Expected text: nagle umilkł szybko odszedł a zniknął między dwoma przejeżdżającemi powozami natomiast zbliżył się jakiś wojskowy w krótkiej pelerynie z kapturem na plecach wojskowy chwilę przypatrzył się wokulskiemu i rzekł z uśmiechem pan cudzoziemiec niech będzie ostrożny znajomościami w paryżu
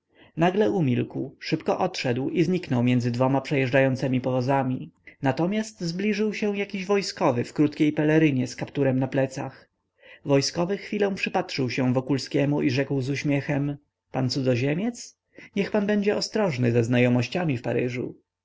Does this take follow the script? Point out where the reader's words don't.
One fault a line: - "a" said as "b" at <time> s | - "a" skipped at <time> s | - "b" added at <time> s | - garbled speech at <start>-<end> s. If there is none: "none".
- "a" said as "i" at 2.3 s
- "pan" added at 15.7 s
- "ze" added at 16.7 s